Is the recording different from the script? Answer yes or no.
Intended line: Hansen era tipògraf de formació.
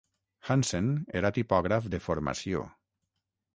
no